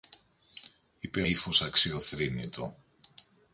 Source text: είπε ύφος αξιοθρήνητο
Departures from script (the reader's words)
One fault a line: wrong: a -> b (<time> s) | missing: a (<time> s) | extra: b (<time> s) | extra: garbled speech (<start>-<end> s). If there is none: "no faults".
no faults